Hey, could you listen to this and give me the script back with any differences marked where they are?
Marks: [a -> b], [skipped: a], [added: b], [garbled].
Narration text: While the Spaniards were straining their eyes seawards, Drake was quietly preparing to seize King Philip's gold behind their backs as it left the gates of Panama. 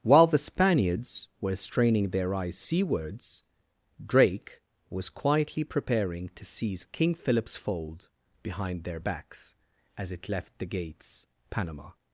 While the Spaniards were straining their eyes seawards, Drake was quietly preparing to seize King Philip's [gold -> fold] behind their backs as it left the gates [skipped: of] Panama.